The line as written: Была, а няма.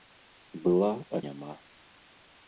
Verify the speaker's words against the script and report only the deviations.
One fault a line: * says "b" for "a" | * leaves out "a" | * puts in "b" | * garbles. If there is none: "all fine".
all fine